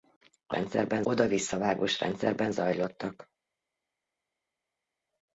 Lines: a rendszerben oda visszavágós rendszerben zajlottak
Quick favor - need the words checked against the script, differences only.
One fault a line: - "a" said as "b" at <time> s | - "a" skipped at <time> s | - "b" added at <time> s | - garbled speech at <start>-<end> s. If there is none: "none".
none